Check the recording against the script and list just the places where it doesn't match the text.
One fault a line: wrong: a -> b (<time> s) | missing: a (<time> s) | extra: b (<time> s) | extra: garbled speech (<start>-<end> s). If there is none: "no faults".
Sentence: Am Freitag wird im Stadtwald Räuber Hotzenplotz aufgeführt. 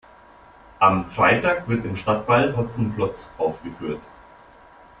missing: Räuber (2.5 s)